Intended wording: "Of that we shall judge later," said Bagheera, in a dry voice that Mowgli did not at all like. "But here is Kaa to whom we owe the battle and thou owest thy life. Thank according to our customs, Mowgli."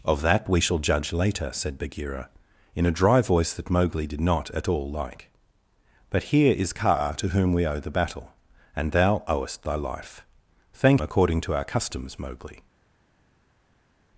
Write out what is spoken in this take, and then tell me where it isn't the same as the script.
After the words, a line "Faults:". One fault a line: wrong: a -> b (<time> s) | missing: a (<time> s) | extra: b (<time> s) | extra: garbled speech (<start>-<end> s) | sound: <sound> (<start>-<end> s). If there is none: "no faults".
"Of that we shall judge later," said Bagheera, in a dry voice that Mowgli did not at all like. "But here is Kaa to whom we owe the battle and thou owest thy life. Thank according to our customs, Mowgli."
Faults:
no faults